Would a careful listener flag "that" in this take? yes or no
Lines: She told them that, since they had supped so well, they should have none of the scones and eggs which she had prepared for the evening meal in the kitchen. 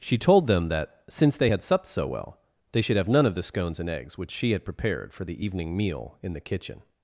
no